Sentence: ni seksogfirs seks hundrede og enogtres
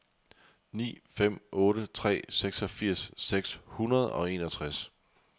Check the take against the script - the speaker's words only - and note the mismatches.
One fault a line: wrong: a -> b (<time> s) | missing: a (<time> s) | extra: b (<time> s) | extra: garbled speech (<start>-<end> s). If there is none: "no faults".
extra: fem otte tre (1.1 s)